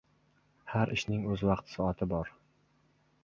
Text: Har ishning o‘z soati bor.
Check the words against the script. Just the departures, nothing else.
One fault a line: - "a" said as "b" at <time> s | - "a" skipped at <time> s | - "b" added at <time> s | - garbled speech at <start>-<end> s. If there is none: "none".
- "vaqt" added at 1.5 s